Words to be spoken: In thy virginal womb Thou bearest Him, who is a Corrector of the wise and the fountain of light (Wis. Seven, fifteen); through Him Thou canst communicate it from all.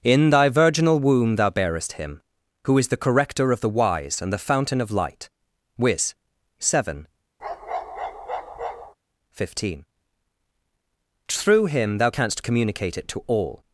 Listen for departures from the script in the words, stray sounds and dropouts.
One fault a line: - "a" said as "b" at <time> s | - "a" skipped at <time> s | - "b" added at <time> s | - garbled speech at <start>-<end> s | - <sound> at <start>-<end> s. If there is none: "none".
- "a" said as "the" at 2.9 s
- bark at 7.4-8.9 s
- "from" said as "to" at 13.1 s